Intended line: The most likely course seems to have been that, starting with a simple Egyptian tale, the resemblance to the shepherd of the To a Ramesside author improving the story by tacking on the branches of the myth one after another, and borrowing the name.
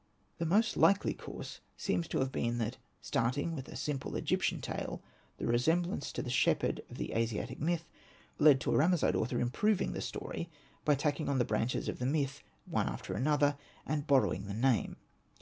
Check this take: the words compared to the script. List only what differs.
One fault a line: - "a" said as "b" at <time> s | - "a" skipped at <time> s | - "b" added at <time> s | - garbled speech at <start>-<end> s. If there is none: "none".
- "Asiatic myth led" added at 7.1 s